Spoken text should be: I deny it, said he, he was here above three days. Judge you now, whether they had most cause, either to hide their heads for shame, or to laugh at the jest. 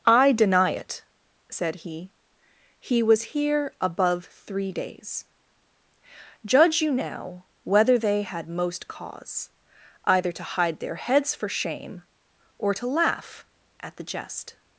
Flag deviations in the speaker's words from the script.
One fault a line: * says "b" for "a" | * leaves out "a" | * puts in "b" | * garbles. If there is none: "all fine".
all fine